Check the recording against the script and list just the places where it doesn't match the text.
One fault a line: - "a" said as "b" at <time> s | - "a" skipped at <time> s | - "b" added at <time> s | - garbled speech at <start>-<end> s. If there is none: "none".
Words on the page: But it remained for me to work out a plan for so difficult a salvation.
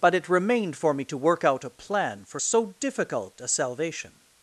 none